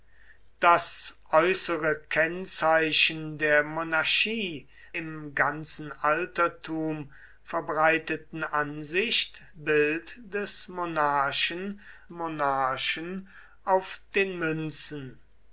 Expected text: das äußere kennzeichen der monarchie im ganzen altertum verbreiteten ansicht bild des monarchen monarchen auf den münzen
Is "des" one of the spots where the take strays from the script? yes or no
no